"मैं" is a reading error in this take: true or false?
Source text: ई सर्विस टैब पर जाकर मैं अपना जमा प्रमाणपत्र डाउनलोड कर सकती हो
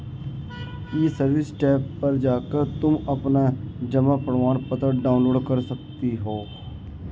true